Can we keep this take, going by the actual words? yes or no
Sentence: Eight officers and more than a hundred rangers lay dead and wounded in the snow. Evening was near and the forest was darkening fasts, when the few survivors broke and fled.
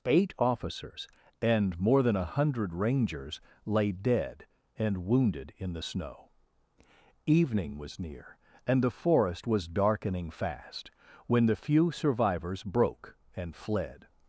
no